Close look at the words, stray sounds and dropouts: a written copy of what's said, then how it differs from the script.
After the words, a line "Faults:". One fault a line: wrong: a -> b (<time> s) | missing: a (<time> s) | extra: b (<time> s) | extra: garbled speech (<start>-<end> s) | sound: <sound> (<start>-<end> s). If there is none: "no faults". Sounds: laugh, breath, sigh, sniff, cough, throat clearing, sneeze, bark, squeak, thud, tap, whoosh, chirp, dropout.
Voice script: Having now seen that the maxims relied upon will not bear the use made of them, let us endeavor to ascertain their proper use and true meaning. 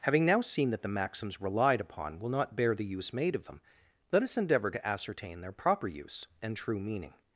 Having now seen that the maxims relied upon will not bear the use made of them, let us endeavor to ascertain their proper use and true meaning.
Faults:
no faults